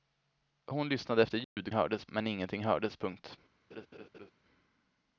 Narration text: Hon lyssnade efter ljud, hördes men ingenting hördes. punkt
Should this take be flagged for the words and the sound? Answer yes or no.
yes